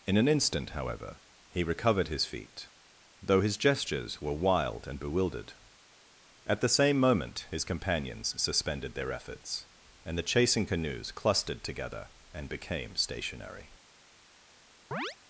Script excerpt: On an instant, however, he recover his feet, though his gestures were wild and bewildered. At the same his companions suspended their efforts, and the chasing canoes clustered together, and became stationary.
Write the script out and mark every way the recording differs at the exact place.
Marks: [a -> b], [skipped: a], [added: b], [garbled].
[On -> In] an instant, however, he [recover -> recovered] his feet, though his gestures were wild and bewildered. At the same [added: moment] his companions suspended their efforts, and the chasing canoes clustered together, and became stationary.